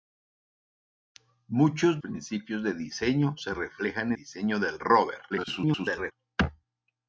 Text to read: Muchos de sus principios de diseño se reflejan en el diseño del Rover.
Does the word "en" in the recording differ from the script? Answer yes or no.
yes